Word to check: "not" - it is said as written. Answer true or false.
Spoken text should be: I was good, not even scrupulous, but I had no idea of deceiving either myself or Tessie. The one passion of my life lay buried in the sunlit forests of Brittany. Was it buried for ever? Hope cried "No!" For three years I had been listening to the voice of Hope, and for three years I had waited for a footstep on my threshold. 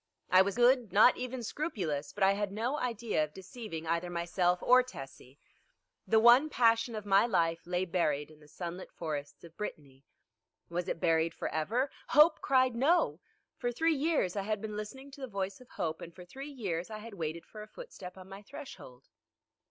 true